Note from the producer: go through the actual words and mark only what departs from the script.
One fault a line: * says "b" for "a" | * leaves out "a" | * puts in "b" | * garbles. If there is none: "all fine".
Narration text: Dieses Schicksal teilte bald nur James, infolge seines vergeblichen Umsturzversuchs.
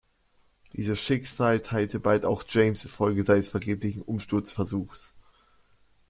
* says "auch" for "nur"